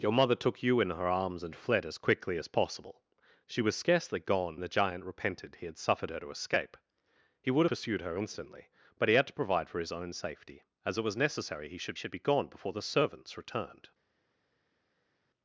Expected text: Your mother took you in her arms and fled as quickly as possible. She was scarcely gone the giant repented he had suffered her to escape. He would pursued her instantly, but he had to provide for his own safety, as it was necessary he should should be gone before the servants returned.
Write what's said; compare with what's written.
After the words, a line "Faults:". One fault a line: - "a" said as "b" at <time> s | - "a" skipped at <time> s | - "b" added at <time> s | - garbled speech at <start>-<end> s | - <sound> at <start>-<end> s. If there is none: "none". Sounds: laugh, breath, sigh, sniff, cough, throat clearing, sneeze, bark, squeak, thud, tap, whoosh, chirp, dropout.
Your mother took you in her arms and fled as quickly as possible. She was scarcely gone the giant repented he had suffered her to escape. He would pursued her instantly, but he had to provide for his own safety, as it was necessary he should should be gone before the servants returned.
Faults:
none